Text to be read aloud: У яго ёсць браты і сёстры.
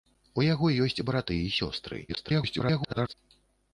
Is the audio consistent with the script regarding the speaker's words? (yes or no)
no